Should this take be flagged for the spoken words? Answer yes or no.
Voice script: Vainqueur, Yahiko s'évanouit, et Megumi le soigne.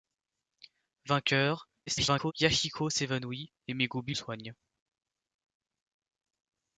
yes